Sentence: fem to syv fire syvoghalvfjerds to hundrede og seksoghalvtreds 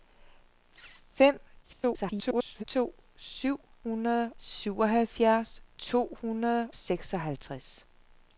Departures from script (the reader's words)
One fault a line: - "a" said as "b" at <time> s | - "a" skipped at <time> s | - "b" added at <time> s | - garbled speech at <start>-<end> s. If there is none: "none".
- garbled speech at 1.6-2.6 s
- "fire" said as "hundrede" at 3.8 s
- "og" skipped at 6.7 s